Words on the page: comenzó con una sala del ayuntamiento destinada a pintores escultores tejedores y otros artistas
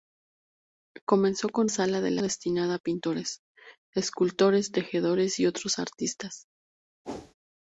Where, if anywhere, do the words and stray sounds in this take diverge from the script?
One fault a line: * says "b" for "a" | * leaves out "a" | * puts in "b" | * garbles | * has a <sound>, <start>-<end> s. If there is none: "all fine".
* leaves out "una"
* leaves out "ayuntamiento"
* has a whoosh, 7.0-7.3 s